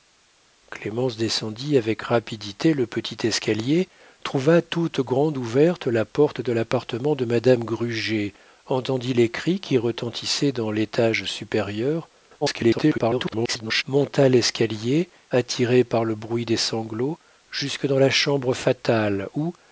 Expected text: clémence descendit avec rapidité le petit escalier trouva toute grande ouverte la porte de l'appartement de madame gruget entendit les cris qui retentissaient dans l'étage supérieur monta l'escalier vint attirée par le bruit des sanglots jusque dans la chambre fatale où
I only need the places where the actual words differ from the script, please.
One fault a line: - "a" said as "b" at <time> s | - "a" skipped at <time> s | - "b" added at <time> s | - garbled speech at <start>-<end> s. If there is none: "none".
- garbled speech at 12.4-13.8 s
- "vint" skipped at 15.1 s